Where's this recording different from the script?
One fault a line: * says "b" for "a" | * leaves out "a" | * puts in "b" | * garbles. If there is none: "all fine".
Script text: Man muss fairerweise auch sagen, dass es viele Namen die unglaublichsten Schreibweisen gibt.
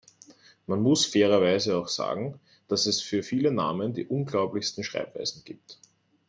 * puts in "für"